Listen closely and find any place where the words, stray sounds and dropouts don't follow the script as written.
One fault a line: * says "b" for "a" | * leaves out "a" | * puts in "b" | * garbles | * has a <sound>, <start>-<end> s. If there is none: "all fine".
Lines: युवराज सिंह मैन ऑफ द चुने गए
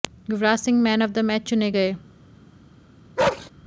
* puts in "मैच"
* has a bark, 3.2-3.5 s